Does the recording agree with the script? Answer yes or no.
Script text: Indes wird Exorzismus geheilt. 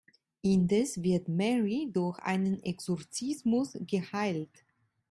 no